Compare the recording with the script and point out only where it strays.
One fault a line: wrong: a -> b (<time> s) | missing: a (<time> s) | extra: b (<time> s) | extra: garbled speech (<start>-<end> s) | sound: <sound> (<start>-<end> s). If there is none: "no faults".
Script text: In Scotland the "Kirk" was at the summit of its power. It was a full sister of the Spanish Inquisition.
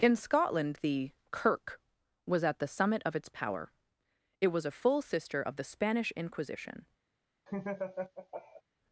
sound: laugh (7.5-8.6 s)